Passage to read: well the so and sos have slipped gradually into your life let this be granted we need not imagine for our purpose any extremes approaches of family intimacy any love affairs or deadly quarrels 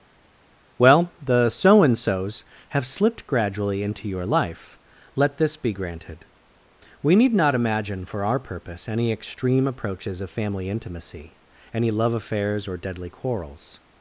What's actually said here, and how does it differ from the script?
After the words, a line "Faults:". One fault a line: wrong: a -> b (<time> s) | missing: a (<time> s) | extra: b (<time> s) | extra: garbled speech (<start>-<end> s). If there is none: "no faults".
well the so and sos have slipped gradually into your life let this be granted we need not imagine for our purpose any extreme approaches of family intimacy any love affairs or deadly quarrels
Faults:
wrong: extremes -> extreme (9.1 s)